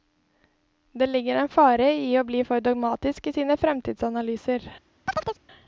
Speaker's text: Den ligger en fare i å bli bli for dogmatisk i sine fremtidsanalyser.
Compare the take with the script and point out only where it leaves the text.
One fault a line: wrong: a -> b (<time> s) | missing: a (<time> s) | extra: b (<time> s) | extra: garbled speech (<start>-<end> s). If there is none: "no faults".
wrong: Den -> Det (0.9 s)
missing: bli (2.4 s)